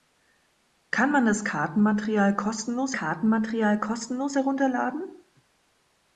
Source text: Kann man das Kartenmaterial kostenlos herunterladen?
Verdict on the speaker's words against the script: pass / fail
fail